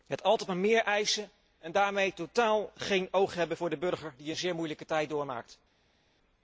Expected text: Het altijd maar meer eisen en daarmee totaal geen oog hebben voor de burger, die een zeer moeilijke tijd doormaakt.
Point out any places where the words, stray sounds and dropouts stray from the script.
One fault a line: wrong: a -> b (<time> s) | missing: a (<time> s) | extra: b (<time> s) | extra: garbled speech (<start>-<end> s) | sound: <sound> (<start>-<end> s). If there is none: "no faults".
no faults